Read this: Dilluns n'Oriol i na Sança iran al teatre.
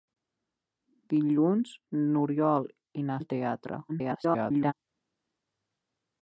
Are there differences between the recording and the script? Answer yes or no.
yes